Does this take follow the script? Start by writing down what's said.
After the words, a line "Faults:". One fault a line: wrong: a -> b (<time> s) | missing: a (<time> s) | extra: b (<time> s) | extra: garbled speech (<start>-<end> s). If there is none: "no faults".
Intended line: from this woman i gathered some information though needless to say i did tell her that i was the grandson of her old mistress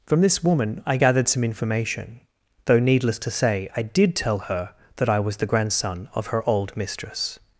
from this woman i gathered some information though needless to say i did tell her that i was the grandson of her old mistress
Faults:
no faults